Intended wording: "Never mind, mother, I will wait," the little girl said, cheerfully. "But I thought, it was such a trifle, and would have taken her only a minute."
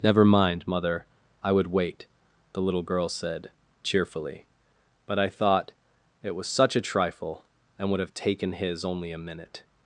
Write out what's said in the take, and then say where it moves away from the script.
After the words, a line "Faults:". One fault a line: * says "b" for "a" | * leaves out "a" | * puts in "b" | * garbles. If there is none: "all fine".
"Never mind, mother, I would wait," the little girl said, cheerfully. "But I thought, it was such a trifle, and would have taken his only a minute."
Faults:
* says "would" for "will"
* says "his" for "her"